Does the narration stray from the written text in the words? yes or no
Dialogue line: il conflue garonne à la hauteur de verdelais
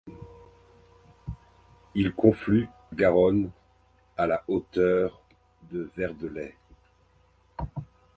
no